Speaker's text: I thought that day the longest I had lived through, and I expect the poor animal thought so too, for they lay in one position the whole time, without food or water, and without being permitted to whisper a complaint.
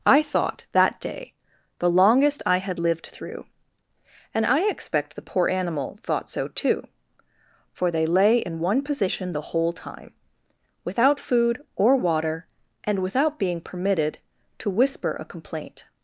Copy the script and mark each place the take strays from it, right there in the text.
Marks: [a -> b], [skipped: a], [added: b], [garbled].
I thought that day the longest I had lived through, and I expect the poor animal thought so too, for they lay in one position the whole time, without food or water, and without being permitted to whisper a complaint.